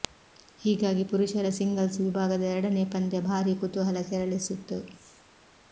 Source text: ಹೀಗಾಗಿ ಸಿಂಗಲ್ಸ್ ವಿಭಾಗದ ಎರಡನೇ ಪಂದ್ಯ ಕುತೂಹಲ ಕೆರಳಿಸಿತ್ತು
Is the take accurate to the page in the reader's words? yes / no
no